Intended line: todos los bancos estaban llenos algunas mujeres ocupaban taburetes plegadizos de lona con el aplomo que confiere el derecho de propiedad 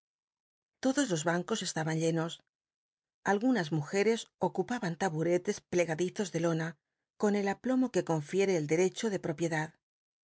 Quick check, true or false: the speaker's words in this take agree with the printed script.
true